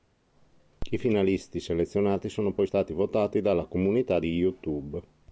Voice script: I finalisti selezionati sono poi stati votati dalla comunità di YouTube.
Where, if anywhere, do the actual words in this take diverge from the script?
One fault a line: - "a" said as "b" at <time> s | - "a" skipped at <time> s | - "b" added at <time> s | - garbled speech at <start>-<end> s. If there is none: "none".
none